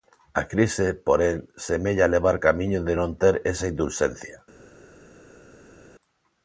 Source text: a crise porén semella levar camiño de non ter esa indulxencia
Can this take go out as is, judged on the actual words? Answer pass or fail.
pass